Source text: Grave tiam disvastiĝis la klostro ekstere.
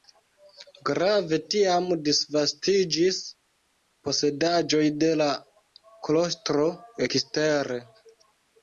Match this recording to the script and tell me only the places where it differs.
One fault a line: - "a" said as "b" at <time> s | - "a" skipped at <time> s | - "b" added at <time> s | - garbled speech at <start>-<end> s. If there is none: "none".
- "posedaĵoj de" added at 4.1 s